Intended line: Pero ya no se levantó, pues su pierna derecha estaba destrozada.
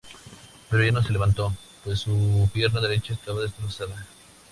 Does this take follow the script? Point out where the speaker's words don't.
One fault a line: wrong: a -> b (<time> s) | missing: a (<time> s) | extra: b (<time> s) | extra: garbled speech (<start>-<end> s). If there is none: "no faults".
no faults